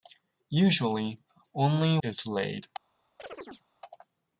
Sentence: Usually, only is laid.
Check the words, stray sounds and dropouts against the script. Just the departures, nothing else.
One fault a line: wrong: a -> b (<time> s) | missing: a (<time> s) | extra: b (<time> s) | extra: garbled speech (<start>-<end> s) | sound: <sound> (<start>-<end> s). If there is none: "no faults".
sound: chirp (3.2-3.6 s)